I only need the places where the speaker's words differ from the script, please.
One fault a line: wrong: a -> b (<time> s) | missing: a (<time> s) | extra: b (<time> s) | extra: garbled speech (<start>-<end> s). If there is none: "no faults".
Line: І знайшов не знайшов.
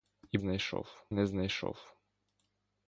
no faults